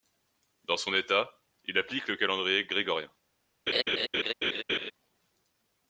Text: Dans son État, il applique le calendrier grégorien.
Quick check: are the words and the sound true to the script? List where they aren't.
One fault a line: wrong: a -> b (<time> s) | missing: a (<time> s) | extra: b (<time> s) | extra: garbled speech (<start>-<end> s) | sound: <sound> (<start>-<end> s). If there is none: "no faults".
sound: laugh (3.7-4.9 s)